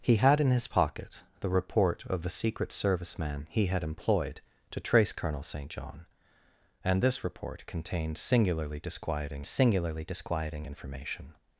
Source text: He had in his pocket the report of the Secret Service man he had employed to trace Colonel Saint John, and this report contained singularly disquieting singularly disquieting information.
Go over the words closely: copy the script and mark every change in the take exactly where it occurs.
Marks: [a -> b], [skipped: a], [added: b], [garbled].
He had in his pocket the report of the Secret Service man he had employed to trace Colonel Saint John, and this report contained singularly disquieting singularly disquieting information.